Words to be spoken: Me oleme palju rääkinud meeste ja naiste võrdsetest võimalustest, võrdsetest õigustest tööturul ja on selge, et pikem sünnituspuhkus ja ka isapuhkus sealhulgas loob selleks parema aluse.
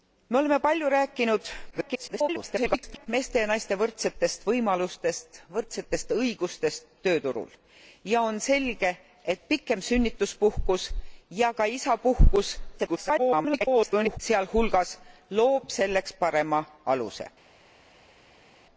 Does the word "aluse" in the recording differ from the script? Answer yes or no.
no